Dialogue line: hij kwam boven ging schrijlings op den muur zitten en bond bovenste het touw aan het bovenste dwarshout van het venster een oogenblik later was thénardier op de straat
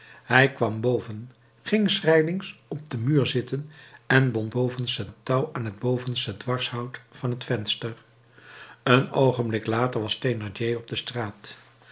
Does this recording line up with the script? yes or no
yes